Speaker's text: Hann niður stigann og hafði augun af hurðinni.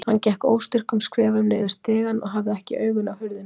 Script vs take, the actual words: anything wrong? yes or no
yes